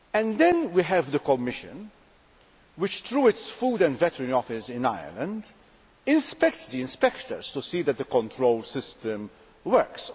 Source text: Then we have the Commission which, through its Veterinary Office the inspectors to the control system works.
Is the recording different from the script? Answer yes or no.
yes